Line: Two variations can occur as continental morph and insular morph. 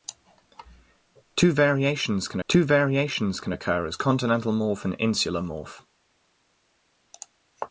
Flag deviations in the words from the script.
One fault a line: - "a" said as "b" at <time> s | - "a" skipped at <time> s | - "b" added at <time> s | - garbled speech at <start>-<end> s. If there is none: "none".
- "two variations can" added at 2.5 s